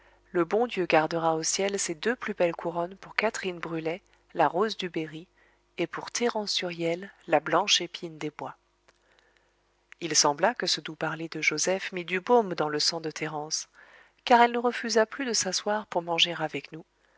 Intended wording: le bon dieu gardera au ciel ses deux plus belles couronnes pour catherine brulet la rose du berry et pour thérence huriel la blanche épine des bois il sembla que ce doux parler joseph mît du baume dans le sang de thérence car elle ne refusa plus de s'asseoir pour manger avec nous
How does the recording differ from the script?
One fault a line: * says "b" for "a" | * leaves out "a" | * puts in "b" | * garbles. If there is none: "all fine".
* puts in "de"